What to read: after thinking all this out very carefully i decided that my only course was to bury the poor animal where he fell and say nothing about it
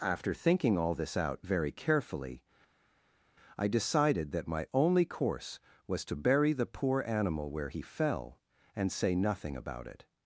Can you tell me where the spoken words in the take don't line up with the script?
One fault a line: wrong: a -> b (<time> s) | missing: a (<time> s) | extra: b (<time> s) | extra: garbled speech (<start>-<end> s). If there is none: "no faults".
no faults